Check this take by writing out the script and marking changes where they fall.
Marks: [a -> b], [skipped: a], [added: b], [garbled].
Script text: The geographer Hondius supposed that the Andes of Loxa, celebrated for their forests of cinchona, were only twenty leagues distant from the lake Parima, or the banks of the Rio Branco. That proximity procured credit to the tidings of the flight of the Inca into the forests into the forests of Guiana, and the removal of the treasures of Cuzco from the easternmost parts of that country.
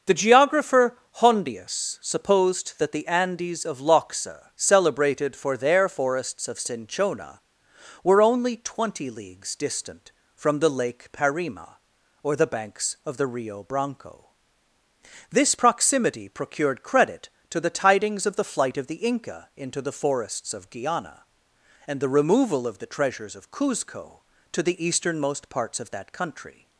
The geographer Hondius supposed that the Andes of Loxa, celebrated for their forests of cinchona, were only twenty leagues distant from the lake Parima, or the banks of the Rio Branco. [That -> This] proximity procured credit to the tidings of the flight of the Inca into the forests [skipped: into the forests] of Guiana, and the removal of the treasures of Cuzco [from -> to] the easternmost parts of that country.